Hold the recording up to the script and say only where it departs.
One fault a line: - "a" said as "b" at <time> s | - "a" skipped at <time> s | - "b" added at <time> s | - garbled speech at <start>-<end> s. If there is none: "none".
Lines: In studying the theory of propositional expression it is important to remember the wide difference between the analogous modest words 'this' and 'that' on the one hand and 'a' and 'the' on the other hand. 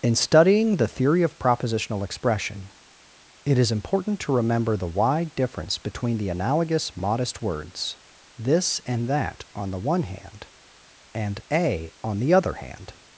- "and the" skipped at 11.9 s